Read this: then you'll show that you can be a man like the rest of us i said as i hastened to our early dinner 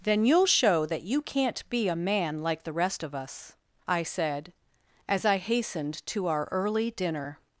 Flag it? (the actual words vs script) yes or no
yes